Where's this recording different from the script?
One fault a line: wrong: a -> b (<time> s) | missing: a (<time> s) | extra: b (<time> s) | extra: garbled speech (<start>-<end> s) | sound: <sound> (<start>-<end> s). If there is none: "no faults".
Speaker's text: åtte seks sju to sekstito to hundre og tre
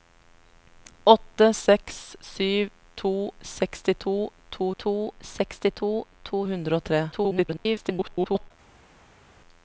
extra: to sekstito to (4.8 s)
extra: garbled speech (7.1-8.5 s)